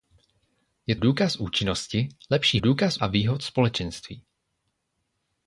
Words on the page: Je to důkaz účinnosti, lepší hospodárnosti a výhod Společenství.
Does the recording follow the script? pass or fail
fail